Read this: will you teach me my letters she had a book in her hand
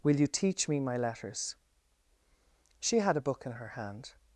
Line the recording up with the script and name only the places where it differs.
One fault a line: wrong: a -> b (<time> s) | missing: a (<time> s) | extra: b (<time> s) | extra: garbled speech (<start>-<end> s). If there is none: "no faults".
no faults